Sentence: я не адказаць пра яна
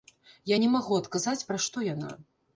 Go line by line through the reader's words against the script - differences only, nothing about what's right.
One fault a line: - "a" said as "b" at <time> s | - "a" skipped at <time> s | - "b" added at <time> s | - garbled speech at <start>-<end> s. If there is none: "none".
- "магу" added at 0.7 s
- "што" added at 1.7 s